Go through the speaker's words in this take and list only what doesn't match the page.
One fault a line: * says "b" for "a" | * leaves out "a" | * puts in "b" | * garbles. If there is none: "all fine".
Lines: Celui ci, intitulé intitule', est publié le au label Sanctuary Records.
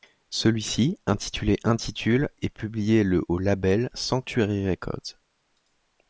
all fine